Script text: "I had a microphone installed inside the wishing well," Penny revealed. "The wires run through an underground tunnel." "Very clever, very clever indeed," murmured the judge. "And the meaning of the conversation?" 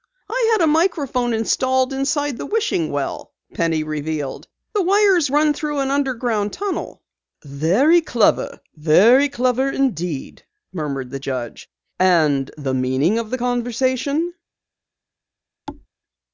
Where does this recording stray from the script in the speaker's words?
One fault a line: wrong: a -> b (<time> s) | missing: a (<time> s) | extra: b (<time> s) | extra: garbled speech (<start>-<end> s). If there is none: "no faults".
no faults